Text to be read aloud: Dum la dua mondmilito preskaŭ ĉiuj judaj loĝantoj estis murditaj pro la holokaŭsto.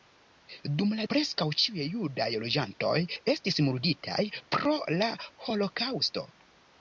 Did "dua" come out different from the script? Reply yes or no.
yes